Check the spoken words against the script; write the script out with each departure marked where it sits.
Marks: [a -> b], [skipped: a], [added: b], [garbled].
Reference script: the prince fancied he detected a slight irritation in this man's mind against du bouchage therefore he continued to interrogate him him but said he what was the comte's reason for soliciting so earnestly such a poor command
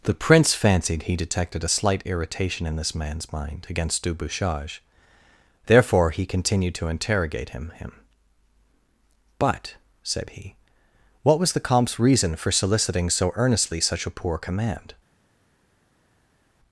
the prince fancied he detected a slight irritation in this man's mind against du bouchage therefore he continued to interrogate him him but said he what was the comte's reason for soliciting so earnestly such a poor command